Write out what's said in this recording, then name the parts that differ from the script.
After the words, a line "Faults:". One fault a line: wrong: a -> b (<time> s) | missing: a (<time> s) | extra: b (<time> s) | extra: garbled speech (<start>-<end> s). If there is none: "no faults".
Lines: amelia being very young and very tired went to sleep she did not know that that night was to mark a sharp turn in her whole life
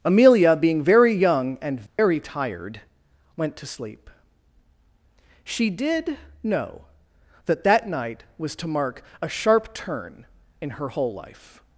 amelia being very young and very tired went to sleep she did know that that night was to mark a sharp turn in her whole life
Faults:
missing: not (6.2 s)